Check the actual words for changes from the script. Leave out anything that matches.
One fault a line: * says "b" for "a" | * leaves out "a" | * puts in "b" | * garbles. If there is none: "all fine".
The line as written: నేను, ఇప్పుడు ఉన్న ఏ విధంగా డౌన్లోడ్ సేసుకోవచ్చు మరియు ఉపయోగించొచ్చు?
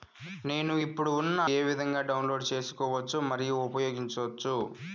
all fine